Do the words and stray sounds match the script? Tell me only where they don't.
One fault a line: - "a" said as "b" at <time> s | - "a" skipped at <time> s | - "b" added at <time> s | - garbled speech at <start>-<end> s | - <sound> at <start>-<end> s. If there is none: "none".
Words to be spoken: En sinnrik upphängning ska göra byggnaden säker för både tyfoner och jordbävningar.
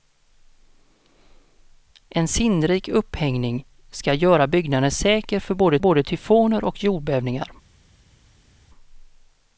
- "både" added at 5.8 s